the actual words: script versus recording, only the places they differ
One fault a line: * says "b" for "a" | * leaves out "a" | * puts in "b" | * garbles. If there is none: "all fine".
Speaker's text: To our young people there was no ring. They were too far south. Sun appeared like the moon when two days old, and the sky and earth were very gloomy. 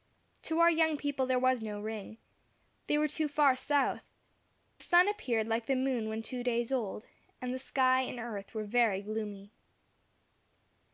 all fine